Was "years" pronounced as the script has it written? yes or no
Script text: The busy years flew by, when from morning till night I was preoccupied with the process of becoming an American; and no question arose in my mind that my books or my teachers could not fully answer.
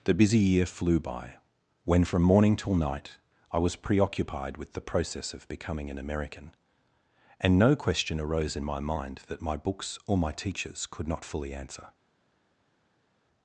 no